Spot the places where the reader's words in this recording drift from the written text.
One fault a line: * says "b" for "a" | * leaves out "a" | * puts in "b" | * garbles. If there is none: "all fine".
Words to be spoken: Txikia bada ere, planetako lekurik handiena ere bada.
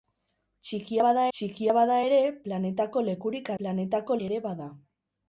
* puts in "txikia bada"
* says "planetako" for "handiena"